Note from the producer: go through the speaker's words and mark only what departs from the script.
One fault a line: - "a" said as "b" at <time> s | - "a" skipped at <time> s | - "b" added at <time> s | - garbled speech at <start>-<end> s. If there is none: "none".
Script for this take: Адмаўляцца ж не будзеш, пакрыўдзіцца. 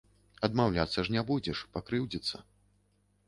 none